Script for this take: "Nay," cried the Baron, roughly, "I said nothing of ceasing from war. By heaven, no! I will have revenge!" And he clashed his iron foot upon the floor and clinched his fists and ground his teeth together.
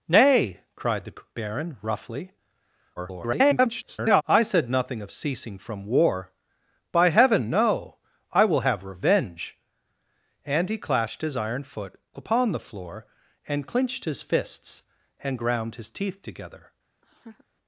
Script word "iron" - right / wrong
right